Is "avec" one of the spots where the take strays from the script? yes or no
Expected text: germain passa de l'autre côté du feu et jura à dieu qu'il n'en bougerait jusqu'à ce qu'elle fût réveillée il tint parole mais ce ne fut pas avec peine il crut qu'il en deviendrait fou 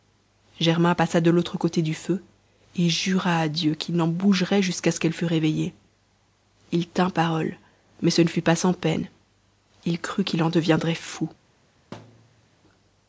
yes